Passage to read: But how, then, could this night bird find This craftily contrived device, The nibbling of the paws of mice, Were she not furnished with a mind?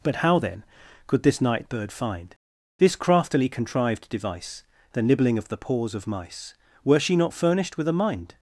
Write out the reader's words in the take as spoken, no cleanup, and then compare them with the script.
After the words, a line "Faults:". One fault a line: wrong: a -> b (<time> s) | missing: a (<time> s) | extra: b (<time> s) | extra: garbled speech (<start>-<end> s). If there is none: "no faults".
But how, then, could this night bird find This craftily contrived device, The nibbling of the paws of mice, Were she not furnished with a mind?
Faults:
no faults